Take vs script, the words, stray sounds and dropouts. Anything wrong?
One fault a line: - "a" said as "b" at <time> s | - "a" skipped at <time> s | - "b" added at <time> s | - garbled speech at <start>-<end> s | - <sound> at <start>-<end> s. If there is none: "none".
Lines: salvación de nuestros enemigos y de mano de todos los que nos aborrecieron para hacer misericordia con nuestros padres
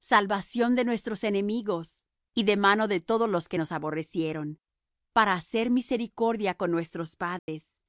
- dropout at 7.4-7.5 s